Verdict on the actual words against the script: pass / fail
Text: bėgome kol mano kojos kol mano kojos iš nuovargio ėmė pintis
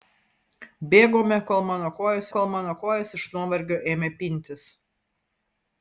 pass